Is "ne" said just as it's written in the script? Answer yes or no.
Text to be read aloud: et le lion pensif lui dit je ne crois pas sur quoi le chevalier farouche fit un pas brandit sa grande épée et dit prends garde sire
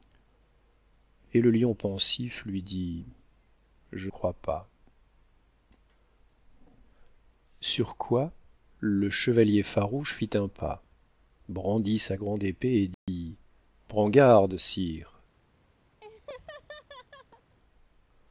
no